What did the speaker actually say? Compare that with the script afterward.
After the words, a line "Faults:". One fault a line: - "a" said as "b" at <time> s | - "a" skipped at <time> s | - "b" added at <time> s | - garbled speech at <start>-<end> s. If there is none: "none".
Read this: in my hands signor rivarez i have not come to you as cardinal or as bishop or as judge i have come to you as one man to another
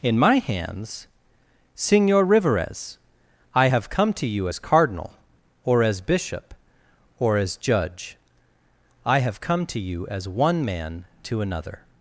in my hands signor rivarez i have come to you as cardinal or as bishop or as judge i have come to you as one man to another
Faults:
- "not" skipped at 3.9 s